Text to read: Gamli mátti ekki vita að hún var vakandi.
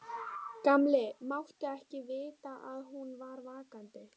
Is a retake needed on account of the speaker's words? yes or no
no